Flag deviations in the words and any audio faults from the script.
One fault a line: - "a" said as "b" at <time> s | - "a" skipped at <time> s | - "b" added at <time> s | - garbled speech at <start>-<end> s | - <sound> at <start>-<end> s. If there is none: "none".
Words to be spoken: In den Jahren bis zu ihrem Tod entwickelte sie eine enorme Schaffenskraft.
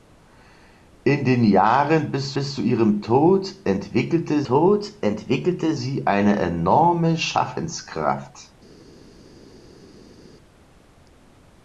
- "bis" added at 2.3 s
- "Tod entwickelte" added at 4.4 s